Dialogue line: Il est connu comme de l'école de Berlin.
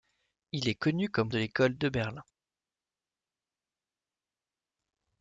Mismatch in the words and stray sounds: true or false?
false